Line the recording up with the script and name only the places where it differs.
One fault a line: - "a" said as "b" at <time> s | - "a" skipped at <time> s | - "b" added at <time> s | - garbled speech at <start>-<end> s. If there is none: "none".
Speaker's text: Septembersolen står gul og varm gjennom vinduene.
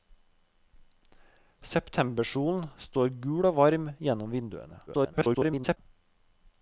- garbled speech at 4.9-5.8 s